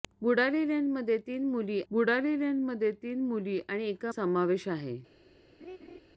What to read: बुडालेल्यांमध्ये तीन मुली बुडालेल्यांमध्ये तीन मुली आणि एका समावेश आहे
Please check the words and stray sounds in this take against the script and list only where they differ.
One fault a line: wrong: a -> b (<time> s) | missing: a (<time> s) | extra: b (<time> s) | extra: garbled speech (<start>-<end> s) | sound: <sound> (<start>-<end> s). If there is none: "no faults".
sound: laugh (5.6-6.0 s)